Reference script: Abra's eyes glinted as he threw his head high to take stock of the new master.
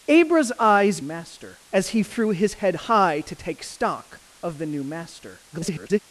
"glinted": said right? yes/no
no